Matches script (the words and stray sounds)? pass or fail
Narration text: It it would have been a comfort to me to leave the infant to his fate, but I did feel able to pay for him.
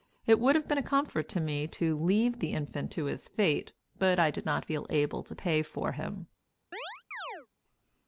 fail